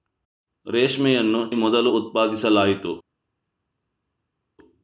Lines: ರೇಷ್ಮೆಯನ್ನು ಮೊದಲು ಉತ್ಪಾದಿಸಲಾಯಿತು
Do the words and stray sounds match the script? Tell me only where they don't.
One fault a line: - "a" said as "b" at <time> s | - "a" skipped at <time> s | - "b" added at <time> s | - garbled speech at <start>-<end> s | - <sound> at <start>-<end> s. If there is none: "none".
none